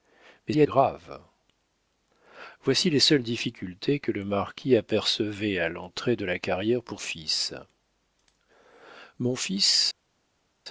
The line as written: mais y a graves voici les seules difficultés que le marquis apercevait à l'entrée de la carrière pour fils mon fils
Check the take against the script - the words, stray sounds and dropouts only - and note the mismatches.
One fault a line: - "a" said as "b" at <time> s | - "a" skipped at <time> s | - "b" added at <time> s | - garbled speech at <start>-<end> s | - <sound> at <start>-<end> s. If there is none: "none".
none